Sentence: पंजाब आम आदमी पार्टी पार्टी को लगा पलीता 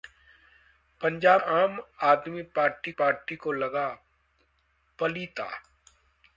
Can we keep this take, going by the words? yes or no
yes